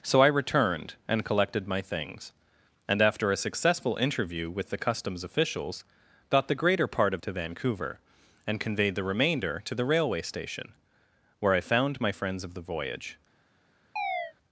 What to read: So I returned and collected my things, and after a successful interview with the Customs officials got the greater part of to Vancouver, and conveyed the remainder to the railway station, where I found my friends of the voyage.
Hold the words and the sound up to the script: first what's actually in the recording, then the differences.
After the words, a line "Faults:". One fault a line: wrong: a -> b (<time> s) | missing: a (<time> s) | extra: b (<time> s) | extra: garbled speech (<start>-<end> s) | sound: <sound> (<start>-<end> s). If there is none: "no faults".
So I returned and collected my things, and after a successful interview with the Customs officials got the greater part of to Vancouver, and conveyed the remainder to the railway station, where I found my friends of the voyage.
Faults:
sound: chirp (14.0-14.3 s)